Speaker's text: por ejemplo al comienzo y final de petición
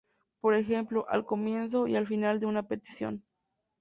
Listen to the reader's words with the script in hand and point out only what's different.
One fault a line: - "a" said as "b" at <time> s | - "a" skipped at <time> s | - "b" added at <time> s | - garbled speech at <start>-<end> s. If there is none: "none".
- "al" added at 1.9 s
- "una" added at 2.5 s